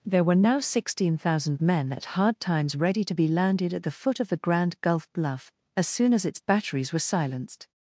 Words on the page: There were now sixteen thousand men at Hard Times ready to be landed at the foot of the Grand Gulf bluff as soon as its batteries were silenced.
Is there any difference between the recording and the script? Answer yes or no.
no